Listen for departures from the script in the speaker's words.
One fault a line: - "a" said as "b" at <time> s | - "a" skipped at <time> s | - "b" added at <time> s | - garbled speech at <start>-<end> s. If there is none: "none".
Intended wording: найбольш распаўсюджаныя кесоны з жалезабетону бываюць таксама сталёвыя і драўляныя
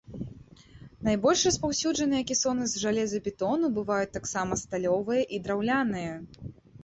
none